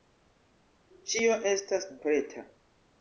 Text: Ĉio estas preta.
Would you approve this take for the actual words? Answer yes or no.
yes